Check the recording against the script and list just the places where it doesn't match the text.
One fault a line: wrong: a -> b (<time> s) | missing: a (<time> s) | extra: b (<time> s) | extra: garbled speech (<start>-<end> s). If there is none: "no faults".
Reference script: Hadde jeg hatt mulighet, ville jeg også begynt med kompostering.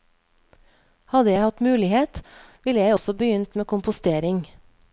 no faults